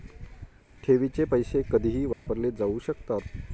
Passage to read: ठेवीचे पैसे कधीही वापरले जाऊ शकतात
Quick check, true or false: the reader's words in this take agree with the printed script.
true